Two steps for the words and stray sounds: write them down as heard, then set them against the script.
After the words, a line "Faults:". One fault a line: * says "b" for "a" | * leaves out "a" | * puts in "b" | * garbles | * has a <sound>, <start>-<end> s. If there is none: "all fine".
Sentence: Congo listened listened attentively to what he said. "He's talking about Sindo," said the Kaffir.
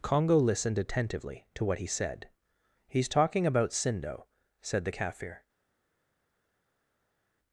Congo listened attentively to what he said. "He's talking about Sindo," said the Kaffir.
Faults:
* leaves out "listened"